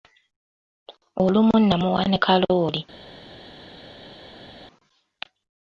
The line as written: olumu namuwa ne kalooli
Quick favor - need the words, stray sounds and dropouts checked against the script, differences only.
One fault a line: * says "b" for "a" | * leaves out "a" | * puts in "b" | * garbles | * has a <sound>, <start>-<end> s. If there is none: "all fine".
all fine